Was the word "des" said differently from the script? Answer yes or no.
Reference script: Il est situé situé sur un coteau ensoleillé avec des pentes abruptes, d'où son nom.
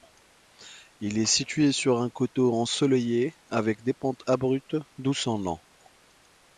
no